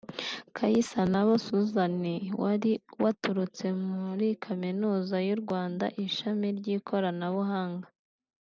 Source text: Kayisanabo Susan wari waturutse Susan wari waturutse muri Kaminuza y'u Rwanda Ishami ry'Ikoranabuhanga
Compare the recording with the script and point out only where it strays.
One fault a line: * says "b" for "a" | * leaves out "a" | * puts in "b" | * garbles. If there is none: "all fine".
* leaves out "Susan wari waturutse"